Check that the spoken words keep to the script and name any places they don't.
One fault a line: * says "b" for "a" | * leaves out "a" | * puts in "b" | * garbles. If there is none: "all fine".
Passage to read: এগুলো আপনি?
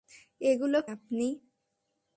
all fine